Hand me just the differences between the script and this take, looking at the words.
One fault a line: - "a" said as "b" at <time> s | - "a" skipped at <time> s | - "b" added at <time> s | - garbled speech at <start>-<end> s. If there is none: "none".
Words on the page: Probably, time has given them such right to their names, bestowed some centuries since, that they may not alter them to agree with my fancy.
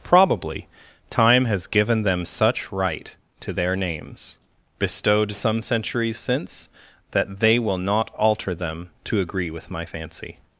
- "may" said as "will" at 7.6 s